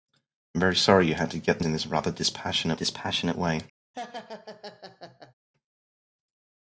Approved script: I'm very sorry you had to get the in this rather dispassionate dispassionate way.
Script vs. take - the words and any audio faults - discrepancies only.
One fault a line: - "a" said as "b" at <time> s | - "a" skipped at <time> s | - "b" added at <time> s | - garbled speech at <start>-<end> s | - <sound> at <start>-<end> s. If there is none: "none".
- laugh at 3.9-5.3 s